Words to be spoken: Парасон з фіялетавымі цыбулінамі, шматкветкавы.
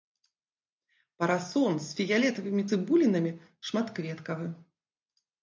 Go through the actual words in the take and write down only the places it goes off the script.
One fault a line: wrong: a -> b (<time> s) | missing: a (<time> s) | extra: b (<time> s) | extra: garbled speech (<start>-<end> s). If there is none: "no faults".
no faults